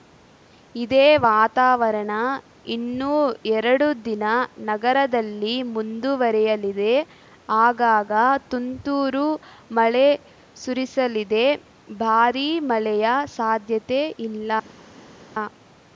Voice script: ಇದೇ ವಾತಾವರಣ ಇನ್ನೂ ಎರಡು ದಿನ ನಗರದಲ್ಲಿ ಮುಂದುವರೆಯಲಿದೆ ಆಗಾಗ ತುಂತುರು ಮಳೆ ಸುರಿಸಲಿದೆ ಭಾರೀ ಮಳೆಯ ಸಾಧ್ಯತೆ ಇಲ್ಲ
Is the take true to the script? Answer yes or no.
yes